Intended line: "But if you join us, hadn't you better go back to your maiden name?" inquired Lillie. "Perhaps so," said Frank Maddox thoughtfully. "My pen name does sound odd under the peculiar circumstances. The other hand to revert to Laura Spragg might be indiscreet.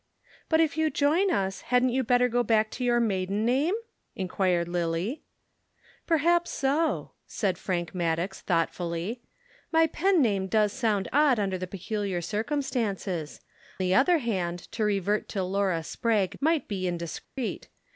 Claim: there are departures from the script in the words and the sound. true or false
true